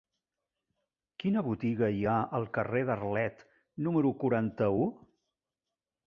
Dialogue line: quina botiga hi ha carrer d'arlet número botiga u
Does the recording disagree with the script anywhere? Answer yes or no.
yes